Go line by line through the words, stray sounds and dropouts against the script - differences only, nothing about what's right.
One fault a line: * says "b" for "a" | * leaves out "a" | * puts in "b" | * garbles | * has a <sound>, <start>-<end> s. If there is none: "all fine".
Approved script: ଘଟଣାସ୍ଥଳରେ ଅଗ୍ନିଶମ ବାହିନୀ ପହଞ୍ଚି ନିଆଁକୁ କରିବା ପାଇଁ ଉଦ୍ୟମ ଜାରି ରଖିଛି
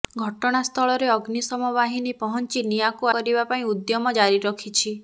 all fine